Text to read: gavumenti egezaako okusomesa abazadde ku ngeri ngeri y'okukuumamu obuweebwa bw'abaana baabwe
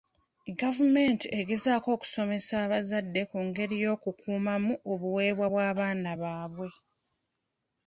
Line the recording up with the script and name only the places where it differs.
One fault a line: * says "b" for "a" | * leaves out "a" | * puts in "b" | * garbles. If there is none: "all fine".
* leaves out "ngeri"